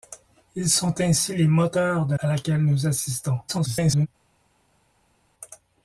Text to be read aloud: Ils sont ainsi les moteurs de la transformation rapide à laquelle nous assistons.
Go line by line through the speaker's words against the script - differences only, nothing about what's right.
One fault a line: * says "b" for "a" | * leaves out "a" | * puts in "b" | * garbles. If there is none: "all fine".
* leaves out "la transformation rapide"
* garbles